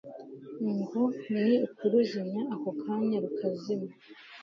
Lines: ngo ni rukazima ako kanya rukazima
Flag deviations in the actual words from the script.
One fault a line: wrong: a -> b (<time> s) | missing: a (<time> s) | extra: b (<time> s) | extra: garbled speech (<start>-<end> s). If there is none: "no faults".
wrong: rukazima -> ukuruzimya (1.7 s)